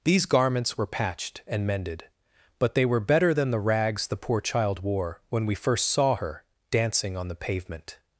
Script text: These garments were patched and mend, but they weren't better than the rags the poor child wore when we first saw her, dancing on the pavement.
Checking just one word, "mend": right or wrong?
wrong